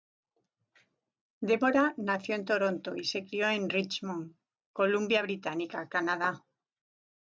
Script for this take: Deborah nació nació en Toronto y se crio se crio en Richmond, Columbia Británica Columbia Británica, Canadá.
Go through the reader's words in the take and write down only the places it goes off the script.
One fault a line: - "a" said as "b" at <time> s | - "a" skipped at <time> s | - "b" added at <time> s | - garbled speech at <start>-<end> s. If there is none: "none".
- "nació" skipped at 2.3 s
- "se crio" skipped at 3.5 s
- "Columbia Británica" skipped at 5.9 s